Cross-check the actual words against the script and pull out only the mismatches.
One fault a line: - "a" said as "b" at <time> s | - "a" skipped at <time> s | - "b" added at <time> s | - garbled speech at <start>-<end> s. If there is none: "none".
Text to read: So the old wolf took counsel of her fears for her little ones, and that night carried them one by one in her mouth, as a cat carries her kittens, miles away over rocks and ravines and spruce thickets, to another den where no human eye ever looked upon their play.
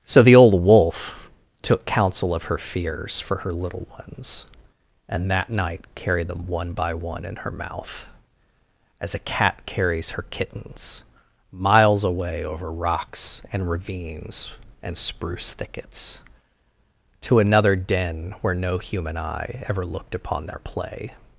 none